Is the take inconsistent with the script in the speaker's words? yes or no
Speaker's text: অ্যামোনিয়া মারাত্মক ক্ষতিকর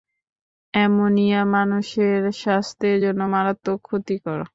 yes